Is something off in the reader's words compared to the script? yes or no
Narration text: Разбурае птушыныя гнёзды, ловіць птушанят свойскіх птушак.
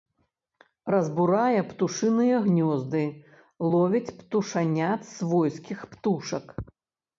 no